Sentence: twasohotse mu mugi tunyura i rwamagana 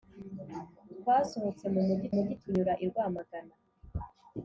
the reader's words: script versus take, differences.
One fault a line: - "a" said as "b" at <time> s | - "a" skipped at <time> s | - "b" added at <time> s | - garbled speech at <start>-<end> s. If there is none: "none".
- "mugi" added at 2.1 s